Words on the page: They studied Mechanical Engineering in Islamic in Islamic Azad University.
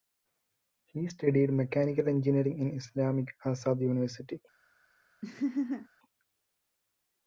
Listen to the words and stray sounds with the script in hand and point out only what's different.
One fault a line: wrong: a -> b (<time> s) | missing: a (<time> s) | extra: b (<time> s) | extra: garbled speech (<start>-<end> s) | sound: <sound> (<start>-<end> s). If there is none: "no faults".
wrong: They -> He (0.9 s)
missing: in Islamic (3.3 s)
sound: laugh (5.2-5.9 s)